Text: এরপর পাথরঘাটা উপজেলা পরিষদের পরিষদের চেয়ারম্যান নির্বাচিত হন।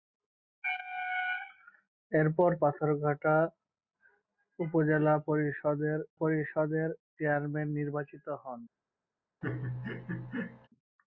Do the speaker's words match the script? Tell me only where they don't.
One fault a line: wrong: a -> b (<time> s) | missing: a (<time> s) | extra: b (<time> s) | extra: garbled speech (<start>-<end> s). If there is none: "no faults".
no faults